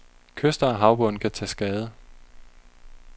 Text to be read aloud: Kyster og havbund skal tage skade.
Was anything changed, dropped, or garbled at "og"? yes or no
no